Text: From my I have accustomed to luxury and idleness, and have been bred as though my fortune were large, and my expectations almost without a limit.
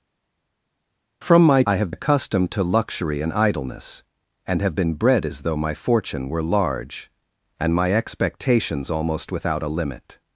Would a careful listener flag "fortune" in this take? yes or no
no